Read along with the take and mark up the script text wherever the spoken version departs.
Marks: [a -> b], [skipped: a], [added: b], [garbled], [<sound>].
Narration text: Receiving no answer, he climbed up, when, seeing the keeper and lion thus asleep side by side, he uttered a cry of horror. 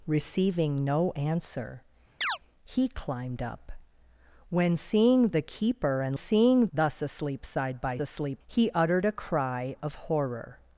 Receiving no answer, [chirp] he climbed up, when, seeing the keeper and [lion -> seeing] thus asleep side by [side, -> asleep] he uttered a cry of horror.